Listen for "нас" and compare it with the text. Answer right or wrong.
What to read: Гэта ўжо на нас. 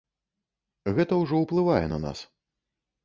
right